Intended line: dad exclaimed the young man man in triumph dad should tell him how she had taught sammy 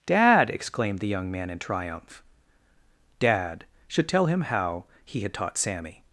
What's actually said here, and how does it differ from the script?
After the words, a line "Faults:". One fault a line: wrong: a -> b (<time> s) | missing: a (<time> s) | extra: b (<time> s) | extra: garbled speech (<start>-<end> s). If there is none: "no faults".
dad exclaimed the young man in triumph dad should tell him how he had taught sammy
Faults:
missing: man (1.5 s)
wrong: she -> he (5.0 s)